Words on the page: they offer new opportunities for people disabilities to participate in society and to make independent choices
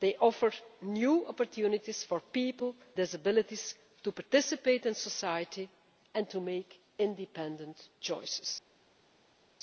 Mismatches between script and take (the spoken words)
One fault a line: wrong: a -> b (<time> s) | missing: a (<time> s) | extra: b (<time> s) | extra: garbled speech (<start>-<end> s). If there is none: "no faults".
no faults